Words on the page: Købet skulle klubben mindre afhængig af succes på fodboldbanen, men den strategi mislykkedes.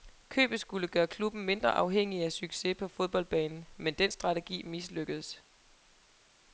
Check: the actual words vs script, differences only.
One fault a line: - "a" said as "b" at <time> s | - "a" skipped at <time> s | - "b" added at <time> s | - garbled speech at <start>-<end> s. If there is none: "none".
- "gøre" added at 0.9 s